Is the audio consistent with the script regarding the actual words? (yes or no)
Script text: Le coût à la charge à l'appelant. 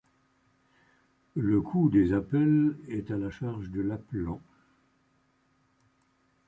no